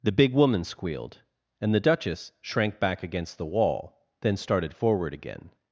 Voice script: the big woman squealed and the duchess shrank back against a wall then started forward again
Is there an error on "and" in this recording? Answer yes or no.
no